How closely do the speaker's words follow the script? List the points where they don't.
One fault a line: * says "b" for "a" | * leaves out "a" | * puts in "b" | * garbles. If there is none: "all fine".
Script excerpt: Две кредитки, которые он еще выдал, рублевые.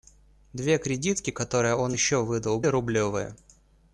all fine